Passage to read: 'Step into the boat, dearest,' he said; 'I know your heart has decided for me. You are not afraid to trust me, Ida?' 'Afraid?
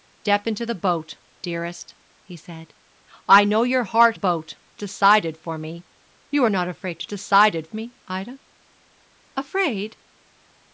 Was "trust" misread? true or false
true